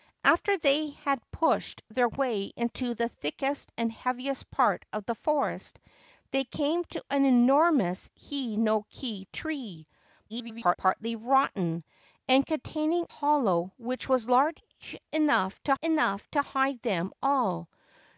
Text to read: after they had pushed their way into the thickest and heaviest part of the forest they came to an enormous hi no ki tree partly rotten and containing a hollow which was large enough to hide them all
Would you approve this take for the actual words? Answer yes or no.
no